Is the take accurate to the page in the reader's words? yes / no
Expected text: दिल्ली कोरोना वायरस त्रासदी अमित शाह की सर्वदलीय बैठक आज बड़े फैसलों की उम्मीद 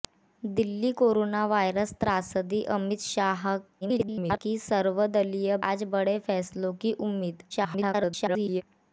no